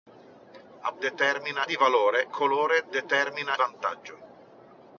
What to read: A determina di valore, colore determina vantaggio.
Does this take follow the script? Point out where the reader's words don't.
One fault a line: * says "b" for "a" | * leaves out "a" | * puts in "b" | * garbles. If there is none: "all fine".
all fine